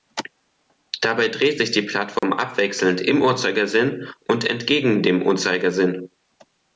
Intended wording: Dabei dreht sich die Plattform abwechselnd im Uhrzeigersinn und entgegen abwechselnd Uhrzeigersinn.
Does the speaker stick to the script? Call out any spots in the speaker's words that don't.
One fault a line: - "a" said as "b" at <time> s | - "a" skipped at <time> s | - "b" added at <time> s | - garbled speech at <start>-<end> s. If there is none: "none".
- "abwechselnd" said as "dem" at 5.0 s